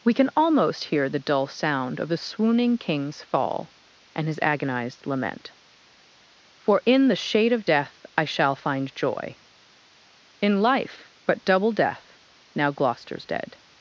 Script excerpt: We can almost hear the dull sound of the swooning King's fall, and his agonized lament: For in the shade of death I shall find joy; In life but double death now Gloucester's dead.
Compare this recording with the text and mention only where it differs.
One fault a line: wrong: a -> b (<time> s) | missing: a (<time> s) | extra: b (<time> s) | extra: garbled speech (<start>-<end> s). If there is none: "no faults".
no faults